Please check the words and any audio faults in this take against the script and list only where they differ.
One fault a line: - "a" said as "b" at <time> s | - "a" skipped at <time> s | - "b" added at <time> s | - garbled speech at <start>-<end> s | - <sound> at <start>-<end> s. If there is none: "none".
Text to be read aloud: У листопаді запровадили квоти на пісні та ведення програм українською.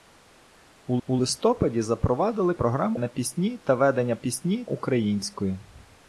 - "у" added at 1.1 s
- "квоти" said as "програм" at 2.5 s
- "програм" said as "пісні" at 4.1 s